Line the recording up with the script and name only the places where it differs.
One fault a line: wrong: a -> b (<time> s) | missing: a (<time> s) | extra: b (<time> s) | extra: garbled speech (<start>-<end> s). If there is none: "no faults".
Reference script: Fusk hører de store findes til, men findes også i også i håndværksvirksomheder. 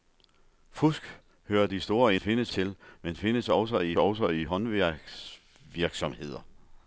no faults